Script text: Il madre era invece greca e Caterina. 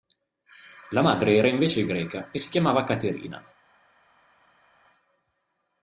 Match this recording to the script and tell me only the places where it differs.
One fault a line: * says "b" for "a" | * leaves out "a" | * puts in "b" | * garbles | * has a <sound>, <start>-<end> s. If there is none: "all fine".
* says "La" for "Il"
* puts in "si chiamava"